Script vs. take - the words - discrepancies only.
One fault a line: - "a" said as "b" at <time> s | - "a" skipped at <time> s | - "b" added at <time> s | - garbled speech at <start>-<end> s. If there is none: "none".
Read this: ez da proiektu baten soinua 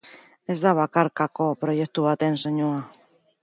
- "bakarkako" added at 0.8 s